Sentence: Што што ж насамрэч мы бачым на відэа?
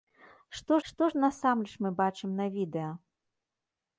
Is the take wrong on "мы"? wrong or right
right